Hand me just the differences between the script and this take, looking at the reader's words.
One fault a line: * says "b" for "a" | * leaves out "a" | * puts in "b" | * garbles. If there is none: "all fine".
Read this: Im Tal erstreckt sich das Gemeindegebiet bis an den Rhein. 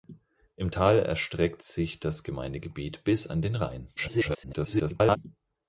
* garbles